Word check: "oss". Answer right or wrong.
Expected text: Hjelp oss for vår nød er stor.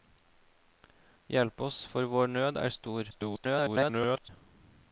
right